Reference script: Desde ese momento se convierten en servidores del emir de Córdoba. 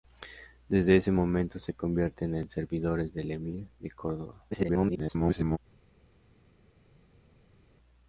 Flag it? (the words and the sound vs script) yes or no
yes